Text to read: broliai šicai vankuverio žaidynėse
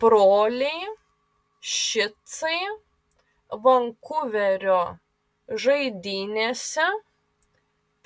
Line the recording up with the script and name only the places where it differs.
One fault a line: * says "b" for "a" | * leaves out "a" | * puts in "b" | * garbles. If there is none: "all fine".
all fine